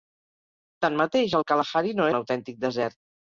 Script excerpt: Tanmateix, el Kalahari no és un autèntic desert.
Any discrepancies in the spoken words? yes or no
yes